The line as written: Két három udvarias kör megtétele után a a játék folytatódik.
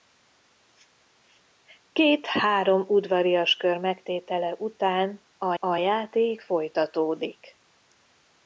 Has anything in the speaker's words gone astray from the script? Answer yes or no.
no